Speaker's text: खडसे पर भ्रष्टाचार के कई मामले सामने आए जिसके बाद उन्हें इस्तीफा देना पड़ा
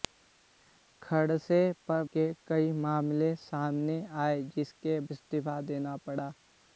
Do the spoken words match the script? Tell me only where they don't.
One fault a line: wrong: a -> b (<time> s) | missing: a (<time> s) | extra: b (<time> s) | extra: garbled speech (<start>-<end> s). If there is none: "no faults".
missing: भ्रष्टाचार (2.0 s)
missing: बाद उन्हें (5.0 s)